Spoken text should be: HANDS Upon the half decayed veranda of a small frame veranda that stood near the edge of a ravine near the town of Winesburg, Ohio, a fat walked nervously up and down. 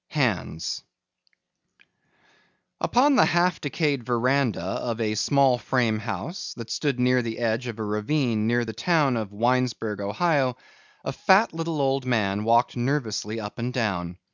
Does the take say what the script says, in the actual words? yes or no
no